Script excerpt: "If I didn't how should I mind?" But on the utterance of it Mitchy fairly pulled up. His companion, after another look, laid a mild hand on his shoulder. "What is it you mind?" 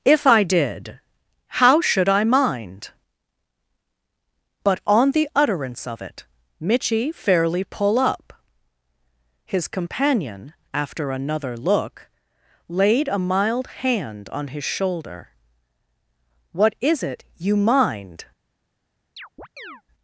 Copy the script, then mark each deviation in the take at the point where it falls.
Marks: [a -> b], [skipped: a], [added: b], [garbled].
"If I [didn't -> did] how should I mind?" But on the utterance of it Mitchy fairly [pulled -> pull] up. His companion, after another look, laid a mild hand on his shoulder. "What is it you mind?"